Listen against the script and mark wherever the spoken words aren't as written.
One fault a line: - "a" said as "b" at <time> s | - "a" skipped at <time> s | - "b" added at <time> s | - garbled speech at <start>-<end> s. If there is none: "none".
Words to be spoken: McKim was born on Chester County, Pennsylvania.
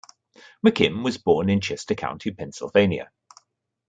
- "on" said as "in" at 1.5 s